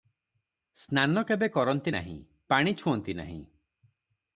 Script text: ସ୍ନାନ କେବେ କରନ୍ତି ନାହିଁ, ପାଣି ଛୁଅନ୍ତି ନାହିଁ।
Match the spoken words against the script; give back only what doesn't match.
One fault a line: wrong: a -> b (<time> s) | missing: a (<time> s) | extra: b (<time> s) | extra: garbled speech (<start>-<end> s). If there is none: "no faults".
no faults